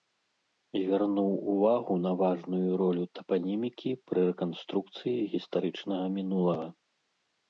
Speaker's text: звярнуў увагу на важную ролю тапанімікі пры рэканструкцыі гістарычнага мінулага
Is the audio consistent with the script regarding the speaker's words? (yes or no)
yes